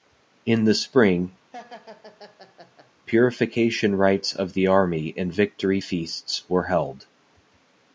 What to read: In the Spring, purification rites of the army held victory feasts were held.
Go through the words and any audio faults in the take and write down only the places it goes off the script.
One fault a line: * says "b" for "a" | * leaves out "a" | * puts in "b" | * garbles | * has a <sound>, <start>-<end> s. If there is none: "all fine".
* has a laugh, 1.5-2.9 s
* says "and" for "held"